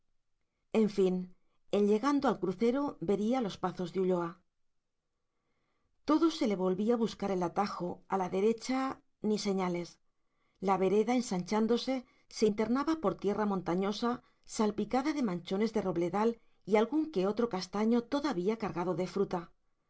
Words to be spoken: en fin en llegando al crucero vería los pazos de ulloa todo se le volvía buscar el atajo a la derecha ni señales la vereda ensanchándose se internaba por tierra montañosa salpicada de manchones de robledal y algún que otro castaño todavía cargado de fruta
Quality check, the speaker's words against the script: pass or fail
pass